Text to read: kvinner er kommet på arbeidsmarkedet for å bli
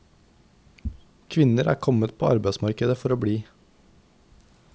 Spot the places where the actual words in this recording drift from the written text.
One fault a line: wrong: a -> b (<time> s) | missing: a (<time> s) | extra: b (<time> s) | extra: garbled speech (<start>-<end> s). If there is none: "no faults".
no faults